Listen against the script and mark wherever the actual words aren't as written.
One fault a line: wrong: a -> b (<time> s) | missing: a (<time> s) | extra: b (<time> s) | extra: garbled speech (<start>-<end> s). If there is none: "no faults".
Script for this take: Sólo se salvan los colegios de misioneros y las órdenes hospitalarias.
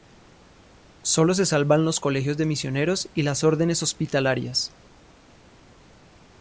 no faults